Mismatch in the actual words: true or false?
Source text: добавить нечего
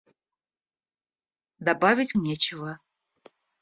false